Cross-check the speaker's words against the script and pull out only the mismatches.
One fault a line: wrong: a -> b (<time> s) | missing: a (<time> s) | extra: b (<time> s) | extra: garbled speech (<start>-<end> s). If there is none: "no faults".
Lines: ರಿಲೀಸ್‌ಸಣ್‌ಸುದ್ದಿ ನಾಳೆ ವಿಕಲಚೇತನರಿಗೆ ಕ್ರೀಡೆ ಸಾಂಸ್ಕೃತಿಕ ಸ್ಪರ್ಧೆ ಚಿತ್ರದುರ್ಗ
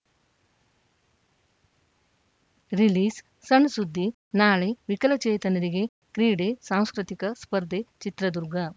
no faults